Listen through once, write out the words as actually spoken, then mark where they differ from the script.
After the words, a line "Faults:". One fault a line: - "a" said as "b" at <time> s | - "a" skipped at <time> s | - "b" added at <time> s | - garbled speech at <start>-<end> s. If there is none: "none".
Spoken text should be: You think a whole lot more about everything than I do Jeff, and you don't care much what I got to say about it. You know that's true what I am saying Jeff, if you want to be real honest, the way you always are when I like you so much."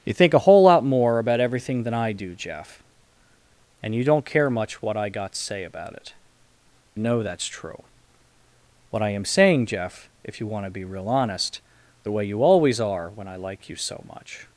You think a whole lot more about everything than I do Jeff, and you don't care much what I got to say about it. Know that's true what I am saying Jeff, if you want to be real honest, the way you always are when I like you so much."
Faults:
- "You" skipped at 6.1 s